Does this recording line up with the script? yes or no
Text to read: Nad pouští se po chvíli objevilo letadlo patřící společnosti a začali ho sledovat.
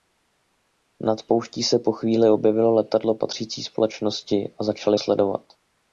no